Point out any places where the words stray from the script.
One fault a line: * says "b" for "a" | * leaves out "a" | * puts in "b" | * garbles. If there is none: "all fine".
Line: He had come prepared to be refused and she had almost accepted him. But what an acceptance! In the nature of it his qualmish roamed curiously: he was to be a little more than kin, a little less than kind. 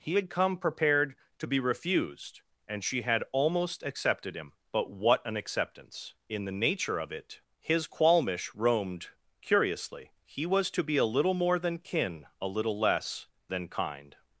all fine